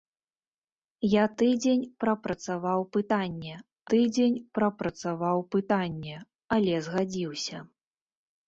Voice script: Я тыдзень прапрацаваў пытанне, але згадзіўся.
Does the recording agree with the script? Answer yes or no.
no